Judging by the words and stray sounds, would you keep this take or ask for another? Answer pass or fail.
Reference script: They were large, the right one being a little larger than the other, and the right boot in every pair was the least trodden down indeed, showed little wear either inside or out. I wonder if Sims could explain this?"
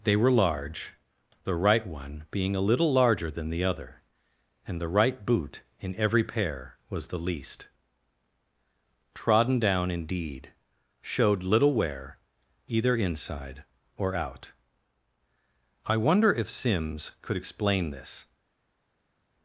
pass